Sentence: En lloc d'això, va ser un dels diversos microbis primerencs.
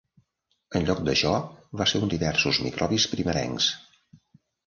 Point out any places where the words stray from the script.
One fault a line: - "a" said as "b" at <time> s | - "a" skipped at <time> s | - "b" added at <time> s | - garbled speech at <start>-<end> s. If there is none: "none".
- "dels" skipped at 2.1 s